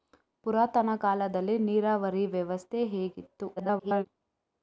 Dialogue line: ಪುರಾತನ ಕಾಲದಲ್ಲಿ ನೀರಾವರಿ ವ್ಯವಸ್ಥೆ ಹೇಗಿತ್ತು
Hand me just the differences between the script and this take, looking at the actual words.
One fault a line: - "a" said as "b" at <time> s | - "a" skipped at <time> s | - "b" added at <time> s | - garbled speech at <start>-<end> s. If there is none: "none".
- garbled speech at 3.6-4.0 s